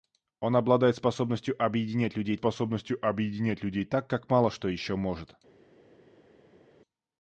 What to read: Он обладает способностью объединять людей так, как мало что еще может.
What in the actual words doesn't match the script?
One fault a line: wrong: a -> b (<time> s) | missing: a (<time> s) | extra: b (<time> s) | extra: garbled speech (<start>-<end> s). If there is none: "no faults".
extra: способностью объединять людей (2.3 s)